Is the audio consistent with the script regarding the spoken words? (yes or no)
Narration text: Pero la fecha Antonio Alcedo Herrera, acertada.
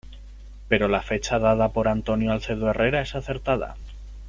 no